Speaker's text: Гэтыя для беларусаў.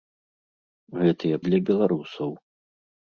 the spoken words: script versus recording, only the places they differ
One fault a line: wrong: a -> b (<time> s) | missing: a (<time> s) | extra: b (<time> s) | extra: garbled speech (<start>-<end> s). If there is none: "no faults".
no faults